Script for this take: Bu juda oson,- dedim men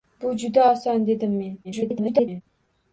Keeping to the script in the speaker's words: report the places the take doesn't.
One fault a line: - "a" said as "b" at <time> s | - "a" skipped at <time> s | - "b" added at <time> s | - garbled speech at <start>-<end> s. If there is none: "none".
- garbled speech at 1.6-2.4 s